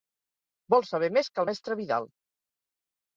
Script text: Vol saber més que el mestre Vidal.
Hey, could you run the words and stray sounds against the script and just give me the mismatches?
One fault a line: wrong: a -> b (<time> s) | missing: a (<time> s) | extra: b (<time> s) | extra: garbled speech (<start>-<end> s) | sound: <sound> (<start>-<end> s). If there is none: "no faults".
no faults